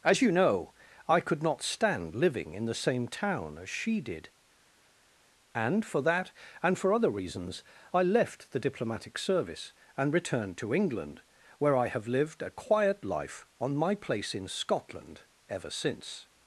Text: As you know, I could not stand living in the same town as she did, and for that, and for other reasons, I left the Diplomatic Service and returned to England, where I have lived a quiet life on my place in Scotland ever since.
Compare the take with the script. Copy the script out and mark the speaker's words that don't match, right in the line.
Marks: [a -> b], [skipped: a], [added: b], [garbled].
As you know, I could not stand living in the same town as she did, and for that, and for other reasons, I left the Diplomatic Service and returned to England, where I have lived a quiet life on my place in Scotland ever since.